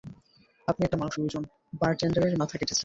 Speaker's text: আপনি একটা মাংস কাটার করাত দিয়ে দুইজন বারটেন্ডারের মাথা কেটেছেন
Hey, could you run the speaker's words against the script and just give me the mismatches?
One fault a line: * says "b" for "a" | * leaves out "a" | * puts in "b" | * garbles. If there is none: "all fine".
* leaves out "কাটার করাত দিয়ে"